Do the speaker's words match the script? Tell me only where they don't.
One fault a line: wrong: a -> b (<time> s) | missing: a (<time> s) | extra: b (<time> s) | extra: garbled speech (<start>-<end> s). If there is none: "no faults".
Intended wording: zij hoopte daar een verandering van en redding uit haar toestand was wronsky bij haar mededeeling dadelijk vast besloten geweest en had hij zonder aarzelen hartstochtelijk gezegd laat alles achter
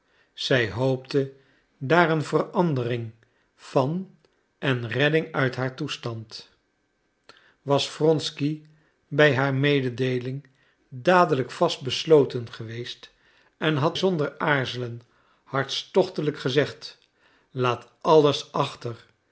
missing: hij (14.0 s)